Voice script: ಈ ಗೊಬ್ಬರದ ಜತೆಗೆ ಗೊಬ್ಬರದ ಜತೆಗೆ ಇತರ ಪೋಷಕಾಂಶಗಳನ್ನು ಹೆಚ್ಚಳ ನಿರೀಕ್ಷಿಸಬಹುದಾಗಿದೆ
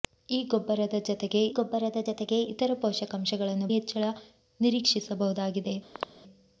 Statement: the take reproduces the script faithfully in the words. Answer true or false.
true